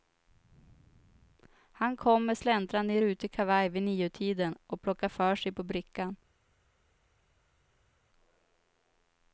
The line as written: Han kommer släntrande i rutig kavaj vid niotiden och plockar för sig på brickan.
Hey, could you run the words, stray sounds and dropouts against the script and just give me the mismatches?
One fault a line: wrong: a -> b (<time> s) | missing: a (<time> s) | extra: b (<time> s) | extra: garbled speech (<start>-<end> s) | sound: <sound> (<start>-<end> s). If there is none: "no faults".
no faults